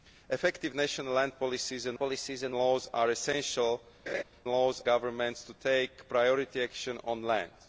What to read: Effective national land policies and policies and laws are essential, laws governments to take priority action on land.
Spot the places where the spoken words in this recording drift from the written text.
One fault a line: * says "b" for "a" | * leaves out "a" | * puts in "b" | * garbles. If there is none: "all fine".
all fine